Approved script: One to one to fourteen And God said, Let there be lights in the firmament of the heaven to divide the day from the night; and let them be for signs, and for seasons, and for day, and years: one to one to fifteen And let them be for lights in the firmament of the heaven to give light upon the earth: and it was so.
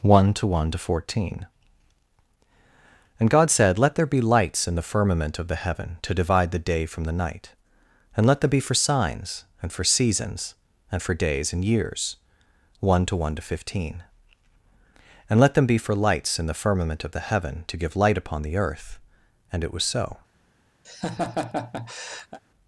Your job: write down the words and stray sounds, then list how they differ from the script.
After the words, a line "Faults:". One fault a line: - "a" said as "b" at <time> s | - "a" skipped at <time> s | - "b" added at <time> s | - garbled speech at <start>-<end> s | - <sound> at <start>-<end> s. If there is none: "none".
One to one to fourteen And God said, Let there be lights in the firmament of the heaven to divide the day from the night; and let them be for signs, and for seasons, and for days, and years: one to one to fifteen And let them be for lights in the firmament of the heaven to give light upon the earth: and it was so.
Faults:
- "day" said as "days" at 11.1 s
- laugh at 20.8-22.4 s